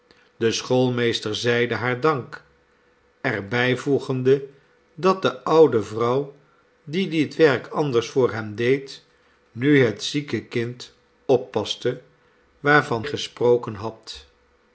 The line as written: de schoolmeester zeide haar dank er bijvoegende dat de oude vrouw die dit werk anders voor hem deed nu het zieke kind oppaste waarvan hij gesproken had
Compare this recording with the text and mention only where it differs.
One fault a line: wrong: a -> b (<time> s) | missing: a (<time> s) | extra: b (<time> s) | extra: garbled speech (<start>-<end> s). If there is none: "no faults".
missing: hij (13.0 s)